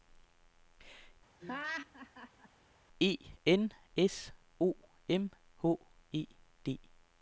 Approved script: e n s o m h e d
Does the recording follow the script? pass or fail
pass